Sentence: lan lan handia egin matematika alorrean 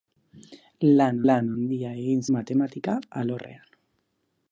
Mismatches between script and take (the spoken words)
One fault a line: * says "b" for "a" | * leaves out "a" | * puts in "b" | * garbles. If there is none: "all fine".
all fine